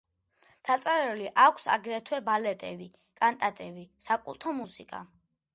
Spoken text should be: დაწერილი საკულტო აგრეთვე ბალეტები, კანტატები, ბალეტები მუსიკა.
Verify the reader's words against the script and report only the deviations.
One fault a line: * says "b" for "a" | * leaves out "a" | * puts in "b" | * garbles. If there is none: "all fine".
* says "აქვს" for "საკულტო"
* says "საკულტო" for "ბალეტები"